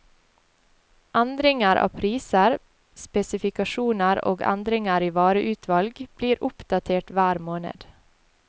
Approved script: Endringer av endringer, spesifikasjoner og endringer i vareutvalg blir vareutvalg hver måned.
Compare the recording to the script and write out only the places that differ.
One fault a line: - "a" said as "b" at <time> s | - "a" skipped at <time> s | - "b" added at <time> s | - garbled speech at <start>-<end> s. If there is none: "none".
- "endringer" said as "priser" at 2.0 s
- "vareutvalg" said as "oppdatert" at 6.5 s